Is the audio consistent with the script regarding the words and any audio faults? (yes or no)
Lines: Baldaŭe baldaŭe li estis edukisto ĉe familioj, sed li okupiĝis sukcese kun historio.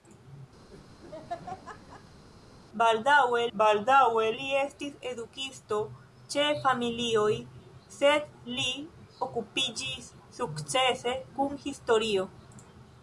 no